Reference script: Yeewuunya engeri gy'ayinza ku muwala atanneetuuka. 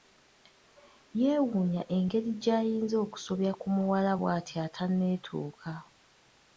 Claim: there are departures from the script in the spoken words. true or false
true